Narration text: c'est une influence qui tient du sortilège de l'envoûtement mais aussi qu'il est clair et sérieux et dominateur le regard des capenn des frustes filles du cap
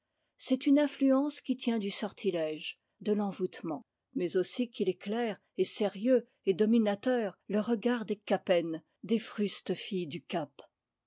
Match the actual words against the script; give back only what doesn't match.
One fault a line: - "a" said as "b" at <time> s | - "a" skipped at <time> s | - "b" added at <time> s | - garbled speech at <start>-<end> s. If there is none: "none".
none